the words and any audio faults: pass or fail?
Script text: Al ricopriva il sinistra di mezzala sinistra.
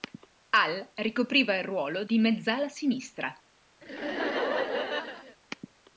fail